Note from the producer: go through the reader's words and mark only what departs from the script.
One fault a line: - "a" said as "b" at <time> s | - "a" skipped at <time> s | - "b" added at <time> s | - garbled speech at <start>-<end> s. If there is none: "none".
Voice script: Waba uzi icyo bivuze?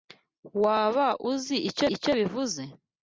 - "icyo" added at 1.9 s